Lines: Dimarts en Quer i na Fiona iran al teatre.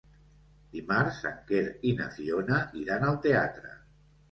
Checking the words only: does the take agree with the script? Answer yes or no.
yes